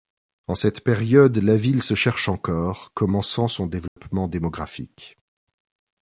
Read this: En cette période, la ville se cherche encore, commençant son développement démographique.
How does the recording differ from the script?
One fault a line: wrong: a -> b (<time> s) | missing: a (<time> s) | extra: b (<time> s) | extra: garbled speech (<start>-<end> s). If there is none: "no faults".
no faults